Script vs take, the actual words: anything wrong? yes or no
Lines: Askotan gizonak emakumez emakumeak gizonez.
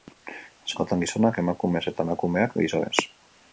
yes